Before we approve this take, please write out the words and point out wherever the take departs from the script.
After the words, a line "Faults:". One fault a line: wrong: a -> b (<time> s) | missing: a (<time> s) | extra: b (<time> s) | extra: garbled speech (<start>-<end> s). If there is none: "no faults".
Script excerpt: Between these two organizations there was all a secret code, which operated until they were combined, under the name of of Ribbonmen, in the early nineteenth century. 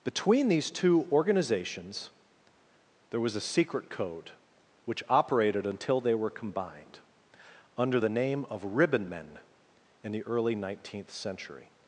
Between these two organizations there was a secret code, which operated until they were combined, under the name of Ribbonmen, in the early nineteenth century.
Faults:
missing: all (3.4 s)
missing: of (8.6 s)